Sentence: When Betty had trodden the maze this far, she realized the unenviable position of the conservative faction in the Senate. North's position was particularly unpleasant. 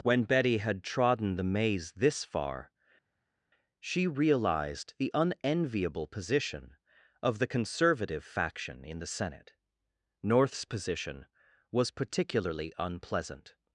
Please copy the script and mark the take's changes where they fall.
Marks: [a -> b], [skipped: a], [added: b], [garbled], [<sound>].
When Betty had trodden the maze this far, she realized the unenviable position of the conservative faction in the Senate. North's position was particularly unpleasant.